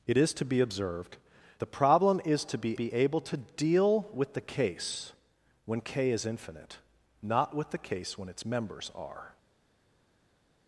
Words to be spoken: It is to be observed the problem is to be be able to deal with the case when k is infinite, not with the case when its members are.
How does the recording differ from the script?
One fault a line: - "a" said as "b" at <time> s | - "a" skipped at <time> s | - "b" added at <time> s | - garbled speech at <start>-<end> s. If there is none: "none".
none